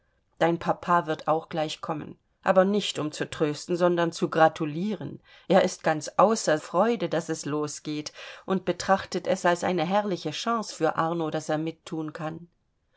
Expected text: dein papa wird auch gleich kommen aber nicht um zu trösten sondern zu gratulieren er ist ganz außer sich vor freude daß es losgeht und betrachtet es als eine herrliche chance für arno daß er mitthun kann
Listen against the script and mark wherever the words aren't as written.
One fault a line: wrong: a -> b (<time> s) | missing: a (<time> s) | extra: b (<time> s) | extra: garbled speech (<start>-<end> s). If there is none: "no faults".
missing: sich vor (6.6 s)